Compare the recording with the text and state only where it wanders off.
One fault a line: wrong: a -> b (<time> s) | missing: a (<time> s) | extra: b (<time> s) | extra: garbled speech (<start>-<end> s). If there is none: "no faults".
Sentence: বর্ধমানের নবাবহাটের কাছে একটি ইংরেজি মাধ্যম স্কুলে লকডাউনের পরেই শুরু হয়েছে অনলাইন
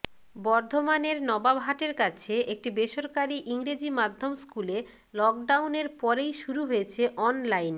extra: বেসরকারি (2.7 s)